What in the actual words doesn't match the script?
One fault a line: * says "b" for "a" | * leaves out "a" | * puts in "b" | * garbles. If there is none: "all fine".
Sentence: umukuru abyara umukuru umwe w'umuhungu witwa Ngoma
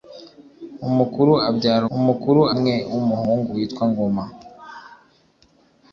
all fine